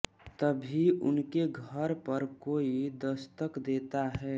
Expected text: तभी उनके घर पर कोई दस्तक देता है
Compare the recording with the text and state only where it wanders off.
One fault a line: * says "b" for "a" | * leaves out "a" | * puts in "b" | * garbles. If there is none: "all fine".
all fine